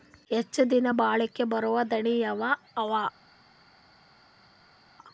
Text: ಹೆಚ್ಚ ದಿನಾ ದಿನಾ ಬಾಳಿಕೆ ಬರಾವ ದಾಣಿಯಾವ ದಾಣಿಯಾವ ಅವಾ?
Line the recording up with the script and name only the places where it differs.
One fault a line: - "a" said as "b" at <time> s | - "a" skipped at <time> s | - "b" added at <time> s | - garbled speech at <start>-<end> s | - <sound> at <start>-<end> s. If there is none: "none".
- "ದಿನಾ" skipped at 0.9 s
- "ದಾಣಿಯಾವ" skipped at 2.4 s